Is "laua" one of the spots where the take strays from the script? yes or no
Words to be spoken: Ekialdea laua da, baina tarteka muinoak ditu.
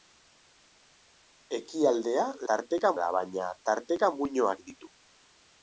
yes